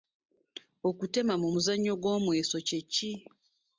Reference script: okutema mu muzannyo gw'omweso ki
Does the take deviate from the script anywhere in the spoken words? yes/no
yes